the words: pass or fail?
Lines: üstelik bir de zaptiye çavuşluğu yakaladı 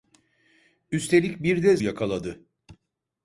fail